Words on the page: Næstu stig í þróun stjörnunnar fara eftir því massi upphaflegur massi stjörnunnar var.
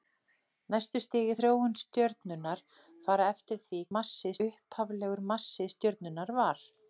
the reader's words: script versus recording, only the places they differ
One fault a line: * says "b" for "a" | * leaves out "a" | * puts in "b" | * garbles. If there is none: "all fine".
all fine